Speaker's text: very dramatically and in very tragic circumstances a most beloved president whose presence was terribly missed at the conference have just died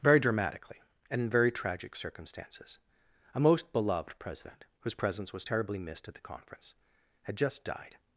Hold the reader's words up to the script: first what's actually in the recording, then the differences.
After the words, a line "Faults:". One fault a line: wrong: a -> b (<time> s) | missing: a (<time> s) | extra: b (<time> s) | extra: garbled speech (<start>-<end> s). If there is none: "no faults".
very dramatically and in very tragic circumstances a most beloved president whose presence was terribly missed at the conference had just died
Faults:
wrong: have -> had (7.2 s)